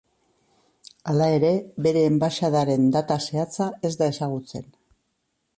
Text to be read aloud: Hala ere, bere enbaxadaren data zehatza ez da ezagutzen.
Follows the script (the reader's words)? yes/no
yes